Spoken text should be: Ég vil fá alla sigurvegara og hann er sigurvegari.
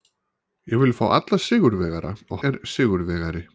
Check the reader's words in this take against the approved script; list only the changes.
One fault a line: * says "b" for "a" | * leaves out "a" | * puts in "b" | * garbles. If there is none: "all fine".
* leaves out "hann"